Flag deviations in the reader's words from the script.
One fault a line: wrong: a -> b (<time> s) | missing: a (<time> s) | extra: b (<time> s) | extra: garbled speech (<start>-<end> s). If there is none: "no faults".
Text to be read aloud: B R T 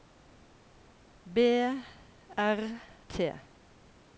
no faults